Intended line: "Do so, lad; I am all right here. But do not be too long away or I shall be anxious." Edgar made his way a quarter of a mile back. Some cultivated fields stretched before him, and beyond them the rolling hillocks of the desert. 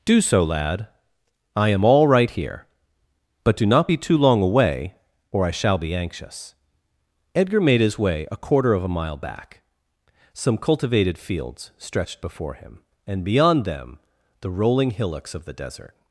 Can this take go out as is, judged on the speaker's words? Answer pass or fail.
pass